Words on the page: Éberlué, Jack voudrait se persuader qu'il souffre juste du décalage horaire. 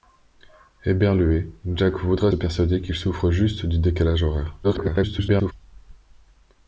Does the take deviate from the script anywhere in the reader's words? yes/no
yes